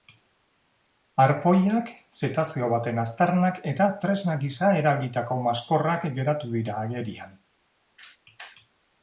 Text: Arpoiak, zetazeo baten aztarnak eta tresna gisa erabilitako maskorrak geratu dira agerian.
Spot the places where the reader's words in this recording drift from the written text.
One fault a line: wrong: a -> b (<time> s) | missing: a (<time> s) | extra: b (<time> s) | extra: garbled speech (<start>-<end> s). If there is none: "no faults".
no faults